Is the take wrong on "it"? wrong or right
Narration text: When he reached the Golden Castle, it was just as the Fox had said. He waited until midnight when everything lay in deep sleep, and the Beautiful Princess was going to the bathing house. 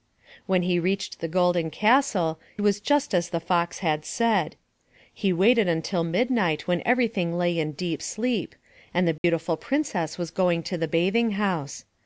wrong